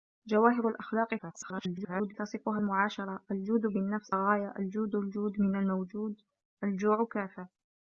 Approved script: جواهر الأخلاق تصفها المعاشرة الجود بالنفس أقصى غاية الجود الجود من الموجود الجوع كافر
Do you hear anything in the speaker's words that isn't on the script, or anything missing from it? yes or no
yes